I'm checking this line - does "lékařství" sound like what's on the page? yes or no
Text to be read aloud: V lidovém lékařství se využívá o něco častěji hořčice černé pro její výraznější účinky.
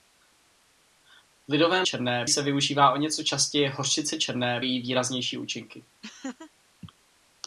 no